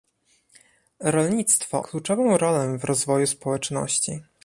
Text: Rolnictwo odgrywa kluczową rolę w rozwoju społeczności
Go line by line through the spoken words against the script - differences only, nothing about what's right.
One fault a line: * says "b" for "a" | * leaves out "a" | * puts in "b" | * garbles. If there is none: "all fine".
* leaves out "odgrywa"